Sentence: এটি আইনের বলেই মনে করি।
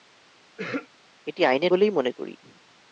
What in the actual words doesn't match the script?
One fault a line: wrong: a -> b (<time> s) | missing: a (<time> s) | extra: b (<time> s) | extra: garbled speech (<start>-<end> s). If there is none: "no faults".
no faults